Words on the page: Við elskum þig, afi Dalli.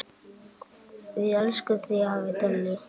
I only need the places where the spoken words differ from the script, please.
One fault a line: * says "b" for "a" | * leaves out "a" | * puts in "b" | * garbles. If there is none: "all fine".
all fine